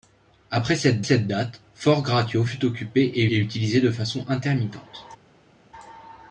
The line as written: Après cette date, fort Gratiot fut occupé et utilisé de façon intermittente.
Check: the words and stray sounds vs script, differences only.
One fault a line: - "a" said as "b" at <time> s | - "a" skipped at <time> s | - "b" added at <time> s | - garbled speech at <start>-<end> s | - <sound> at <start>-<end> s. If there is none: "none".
- "cette" added at 1.0 s
- "et" added at 3.3 s